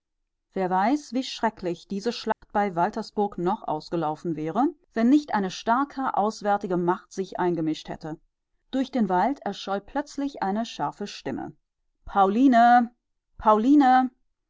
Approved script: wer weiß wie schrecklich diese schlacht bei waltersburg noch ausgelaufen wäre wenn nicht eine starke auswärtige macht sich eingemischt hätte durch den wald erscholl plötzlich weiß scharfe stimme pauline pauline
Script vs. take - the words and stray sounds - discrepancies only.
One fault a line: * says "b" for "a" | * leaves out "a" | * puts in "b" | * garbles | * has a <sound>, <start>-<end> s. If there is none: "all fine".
* has a dropout, 2.3-2.4 s
* says "eine" for "weiß"